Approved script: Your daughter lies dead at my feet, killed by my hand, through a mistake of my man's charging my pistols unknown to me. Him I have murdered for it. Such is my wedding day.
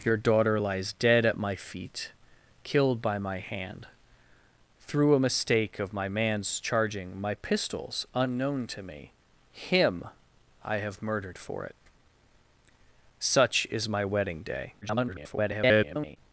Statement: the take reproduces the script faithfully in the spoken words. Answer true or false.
false